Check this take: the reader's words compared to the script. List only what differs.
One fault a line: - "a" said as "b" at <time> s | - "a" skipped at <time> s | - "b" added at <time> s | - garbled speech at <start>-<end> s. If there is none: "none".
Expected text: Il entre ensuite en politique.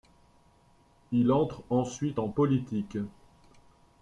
none